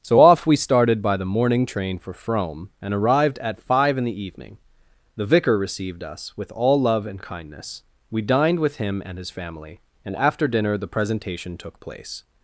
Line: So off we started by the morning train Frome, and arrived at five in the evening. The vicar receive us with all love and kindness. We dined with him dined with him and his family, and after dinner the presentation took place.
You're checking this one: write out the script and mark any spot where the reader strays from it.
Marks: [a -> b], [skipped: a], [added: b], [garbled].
So off we started by the morning train [added: for] Frome, and arrived at five in the evening. The vicar [receive -> received] us with all love and kindness. We dined with him [skipped: dined with him] and his family, and after dinner the presentation took place.